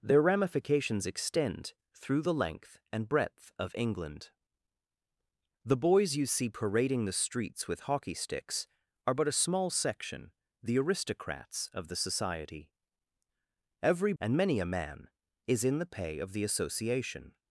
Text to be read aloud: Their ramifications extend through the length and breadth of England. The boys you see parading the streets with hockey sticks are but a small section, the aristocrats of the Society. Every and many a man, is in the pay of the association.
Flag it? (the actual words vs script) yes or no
no